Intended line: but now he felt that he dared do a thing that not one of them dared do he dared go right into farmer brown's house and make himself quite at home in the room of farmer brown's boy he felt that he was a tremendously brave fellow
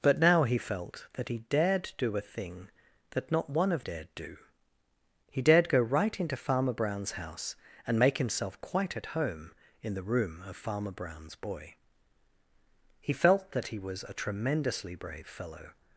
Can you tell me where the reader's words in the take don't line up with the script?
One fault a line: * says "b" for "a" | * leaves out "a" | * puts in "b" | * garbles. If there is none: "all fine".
* leaves out "them"